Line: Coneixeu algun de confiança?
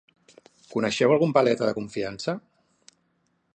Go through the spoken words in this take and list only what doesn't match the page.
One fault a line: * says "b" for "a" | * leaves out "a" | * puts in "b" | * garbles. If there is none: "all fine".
* puts in "paleta"